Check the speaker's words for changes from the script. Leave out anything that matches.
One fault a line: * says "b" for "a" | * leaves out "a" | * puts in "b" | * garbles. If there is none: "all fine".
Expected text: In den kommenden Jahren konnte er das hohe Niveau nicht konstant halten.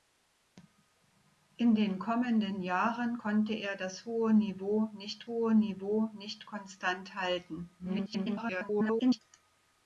* puts in "hohe Niveau nicht"
* garbles